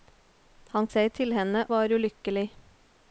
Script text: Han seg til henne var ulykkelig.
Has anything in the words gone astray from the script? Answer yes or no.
no